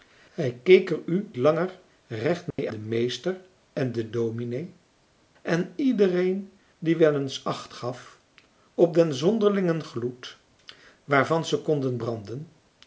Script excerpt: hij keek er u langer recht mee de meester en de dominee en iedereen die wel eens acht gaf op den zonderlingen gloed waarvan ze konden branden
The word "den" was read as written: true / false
true